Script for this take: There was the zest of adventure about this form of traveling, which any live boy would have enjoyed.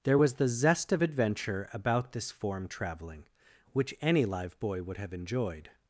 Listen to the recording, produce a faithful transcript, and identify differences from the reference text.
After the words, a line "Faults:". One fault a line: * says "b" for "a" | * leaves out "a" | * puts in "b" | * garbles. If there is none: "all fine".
There was the zest of adventure about this form traveling, which any live boy would have enjoyed.
Faults:
* leaves out "of"